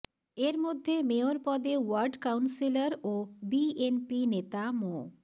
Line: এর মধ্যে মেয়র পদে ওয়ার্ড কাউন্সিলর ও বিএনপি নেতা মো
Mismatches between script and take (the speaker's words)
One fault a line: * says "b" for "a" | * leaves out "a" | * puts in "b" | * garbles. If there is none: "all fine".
all fine